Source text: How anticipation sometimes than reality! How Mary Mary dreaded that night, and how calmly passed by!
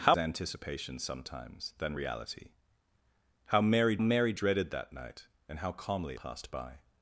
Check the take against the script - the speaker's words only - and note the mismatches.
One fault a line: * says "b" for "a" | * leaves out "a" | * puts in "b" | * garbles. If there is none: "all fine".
all fine